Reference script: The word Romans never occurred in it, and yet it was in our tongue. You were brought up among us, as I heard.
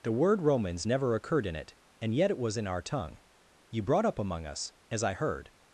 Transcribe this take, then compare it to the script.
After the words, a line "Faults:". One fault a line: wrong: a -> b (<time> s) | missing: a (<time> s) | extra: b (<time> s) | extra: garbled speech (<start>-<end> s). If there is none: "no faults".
The word Romans never occurred in it, and yet it was in our tongue. You brought up among us, as I heard.
Faults:
missing: were (3.8 s)